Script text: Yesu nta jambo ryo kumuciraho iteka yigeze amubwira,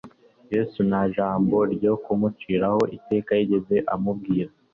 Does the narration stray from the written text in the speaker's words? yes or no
no